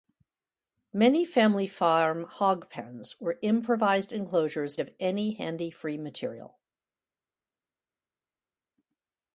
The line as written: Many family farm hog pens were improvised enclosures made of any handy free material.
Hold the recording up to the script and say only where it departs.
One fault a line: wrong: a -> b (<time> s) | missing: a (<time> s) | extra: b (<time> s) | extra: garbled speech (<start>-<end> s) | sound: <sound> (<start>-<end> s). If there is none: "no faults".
missing: made (4.8 s)